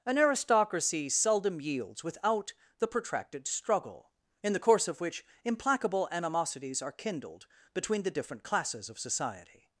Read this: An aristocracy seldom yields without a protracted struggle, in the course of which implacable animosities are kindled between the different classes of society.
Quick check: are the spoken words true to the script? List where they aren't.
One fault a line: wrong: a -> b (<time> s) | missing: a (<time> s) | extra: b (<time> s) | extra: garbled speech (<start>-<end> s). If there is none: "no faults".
wrong: a -> the (2.8 s)